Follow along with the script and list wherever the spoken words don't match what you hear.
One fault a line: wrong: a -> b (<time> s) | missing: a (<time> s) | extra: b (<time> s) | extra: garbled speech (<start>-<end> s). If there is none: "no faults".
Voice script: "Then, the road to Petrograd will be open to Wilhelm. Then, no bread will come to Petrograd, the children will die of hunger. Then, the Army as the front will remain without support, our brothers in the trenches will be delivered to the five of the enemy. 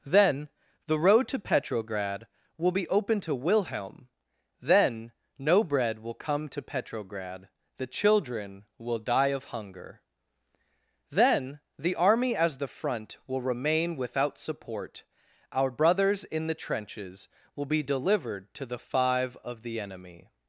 no faults